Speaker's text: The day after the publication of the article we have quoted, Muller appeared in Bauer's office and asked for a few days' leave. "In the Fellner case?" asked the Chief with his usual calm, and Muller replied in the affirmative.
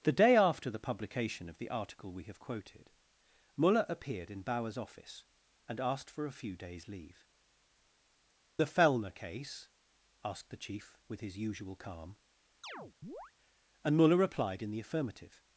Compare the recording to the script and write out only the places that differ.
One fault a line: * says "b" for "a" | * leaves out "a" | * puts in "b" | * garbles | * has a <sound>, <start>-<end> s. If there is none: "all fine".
* leaves out "In"
* has a chirp, 12.6-13.3 s